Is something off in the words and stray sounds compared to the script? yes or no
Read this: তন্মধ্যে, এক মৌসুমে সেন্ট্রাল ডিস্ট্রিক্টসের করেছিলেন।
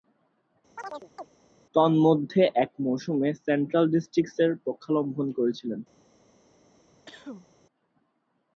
yes